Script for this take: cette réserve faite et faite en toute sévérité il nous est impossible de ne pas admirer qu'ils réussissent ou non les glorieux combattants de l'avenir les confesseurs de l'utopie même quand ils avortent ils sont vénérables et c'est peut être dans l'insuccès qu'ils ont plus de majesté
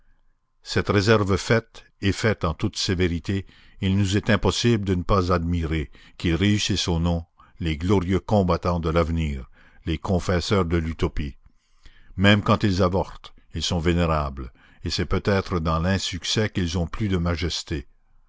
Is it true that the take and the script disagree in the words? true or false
false